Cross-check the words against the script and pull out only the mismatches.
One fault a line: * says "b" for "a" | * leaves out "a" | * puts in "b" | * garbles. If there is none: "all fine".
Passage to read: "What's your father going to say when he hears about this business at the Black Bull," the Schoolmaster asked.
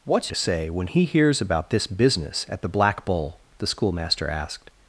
* leaves out "your father going"